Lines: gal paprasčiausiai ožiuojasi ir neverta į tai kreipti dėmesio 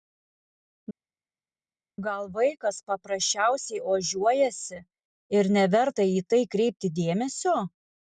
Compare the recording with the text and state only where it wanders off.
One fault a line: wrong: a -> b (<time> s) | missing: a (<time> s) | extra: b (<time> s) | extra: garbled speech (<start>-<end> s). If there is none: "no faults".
extra: vaikas (2.3 s)